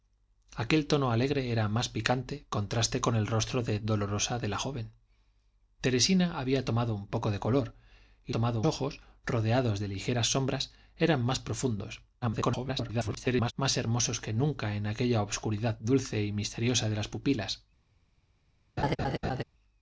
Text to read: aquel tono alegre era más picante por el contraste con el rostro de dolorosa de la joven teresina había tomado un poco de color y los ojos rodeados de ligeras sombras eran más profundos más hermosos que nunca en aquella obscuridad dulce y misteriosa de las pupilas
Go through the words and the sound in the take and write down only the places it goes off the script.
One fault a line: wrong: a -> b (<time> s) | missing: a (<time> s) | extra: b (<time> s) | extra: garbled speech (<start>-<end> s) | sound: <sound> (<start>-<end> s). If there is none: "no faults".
missing: por el (2.5 s)
wrong: los -> tomado (8.3 s)
extra: garbled speech (12.2-13.5 s)
sound: laugh (18.8-19.4 s)